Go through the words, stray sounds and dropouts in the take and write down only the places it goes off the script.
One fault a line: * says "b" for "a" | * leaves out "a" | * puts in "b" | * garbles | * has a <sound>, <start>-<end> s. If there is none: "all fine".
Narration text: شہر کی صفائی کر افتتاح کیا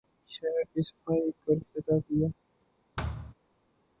* has a thud, 3.0-3.3 s